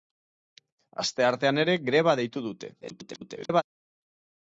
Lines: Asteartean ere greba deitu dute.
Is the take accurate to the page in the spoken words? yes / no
no